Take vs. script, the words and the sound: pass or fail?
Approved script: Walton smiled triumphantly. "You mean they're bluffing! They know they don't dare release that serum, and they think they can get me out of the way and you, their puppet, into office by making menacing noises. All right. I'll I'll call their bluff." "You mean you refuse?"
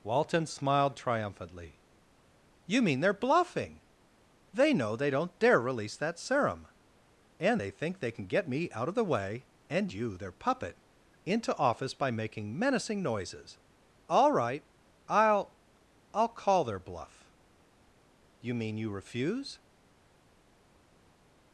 pass